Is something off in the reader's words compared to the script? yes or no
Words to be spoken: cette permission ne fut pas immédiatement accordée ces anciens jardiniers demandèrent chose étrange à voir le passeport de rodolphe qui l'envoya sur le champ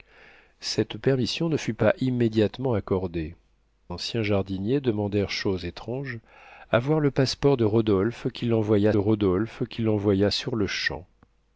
yes